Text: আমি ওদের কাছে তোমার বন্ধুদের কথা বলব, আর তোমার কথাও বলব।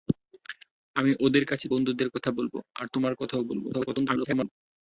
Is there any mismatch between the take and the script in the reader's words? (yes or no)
yes